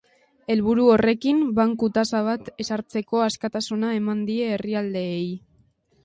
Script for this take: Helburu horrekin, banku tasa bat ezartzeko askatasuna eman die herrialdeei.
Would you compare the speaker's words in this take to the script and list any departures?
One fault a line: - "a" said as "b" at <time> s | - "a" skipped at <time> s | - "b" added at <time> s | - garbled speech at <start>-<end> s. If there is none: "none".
none